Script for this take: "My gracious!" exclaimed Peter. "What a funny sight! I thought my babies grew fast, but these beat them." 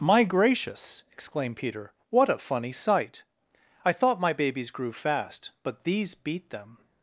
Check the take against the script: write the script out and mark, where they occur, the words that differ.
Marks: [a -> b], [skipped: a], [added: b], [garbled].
"My gracious!" exclaimed Peter. "What a funny sight! I thought my babies grew fast, but these beat them."